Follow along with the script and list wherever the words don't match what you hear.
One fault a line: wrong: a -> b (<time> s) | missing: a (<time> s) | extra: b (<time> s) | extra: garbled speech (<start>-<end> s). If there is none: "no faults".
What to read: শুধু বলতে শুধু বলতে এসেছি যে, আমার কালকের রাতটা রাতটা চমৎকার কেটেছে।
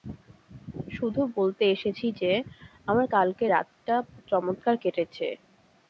missing: শুধু বলতে (1.6 s)
missing: রাতটা (3.9 s)